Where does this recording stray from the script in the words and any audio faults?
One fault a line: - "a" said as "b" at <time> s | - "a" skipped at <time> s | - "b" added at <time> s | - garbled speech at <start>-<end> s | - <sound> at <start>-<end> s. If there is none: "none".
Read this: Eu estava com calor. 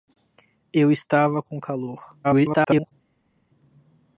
- garbled speech at 2.2-2.9 s